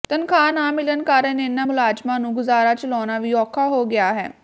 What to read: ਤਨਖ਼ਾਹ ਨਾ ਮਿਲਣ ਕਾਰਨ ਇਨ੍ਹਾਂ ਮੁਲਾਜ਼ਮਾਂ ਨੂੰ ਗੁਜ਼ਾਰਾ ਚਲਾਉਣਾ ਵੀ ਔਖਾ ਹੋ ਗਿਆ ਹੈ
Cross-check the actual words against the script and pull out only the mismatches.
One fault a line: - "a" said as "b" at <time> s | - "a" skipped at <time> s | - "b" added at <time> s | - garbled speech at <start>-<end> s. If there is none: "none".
none